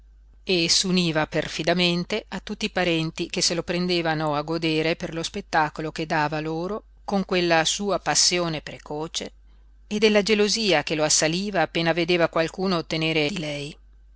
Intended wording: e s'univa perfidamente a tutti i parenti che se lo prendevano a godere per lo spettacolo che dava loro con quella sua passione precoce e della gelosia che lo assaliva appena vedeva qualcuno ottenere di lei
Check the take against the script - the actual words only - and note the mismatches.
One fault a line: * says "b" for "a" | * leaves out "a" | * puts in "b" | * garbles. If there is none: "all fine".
all fine